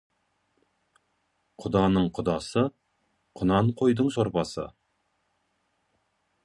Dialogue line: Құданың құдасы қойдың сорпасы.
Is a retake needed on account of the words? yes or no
yes